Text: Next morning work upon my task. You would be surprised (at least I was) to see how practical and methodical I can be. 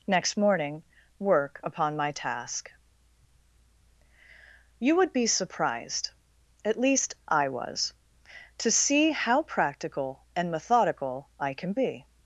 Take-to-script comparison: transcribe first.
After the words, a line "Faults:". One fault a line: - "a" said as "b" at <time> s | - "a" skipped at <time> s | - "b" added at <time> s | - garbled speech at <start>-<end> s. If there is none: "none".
Next morning work upon my task. You would be surprised (at least I was) to see how practical and methodical I can be.
Faults:
none